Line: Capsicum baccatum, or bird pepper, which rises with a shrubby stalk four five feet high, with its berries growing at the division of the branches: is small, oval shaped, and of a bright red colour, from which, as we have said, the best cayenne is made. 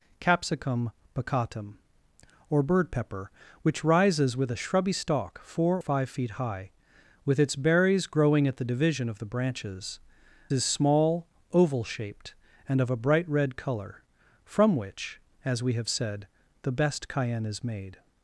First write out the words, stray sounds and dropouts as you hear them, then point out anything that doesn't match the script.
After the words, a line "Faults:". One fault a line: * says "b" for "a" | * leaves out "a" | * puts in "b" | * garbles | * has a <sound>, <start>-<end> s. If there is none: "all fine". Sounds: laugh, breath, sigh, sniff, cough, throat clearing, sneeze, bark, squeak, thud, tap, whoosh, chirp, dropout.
Capsicum baccatum, or bird pepper, which rises with a shrubby stalk four five feet high, with its berries growing at the division of the branches: is small, oval shaped, and of a bright red colour, from which, as we have said, the best cayenne is made.
Faults:
all fine